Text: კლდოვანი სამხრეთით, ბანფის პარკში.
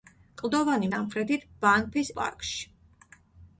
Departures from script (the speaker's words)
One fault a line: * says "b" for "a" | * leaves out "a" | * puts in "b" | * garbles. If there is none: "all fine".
all fine